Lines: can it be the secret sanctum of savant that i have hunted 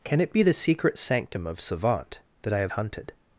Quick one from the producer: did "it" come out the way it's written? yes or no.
yes